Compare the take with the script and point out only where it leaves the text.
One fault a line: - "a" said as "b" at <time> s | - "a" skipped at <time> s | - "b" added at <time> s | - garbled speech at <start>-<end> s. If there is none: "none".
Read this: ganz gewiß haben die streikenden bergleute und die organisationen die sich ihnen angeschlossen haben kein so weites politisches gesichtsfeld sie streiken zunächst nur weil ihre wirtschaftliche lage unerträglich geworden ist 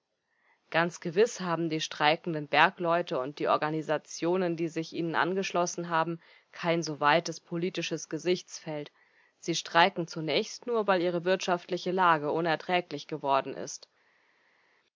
none